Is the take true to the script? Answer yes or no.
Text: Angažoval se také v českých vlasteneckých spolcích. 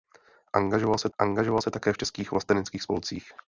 no